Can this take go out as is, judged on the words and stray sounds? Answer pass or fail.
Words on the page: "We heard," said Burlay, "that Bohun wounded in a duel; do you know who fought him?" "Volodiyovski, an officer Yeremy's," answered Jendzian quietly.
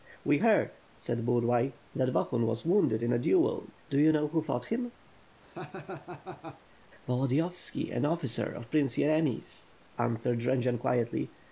fail